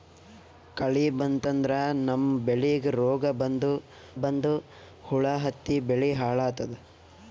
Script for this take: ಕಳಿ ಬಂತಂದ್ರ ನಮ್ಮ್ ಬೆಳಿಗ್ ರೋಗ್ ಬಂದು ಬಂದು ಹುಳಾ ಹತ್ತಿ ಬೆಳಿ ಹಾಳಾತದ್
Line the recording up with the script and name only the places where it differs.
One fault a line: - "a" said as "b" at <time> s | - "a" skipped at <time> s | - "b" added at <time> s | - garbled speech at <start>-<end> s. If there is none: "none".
none